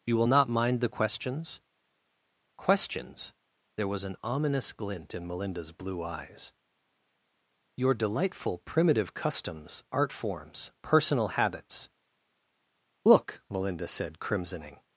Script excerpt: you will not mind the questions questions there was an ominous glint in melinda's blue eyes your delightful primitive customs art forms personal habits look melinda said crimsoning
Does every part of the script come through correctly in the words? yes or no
yes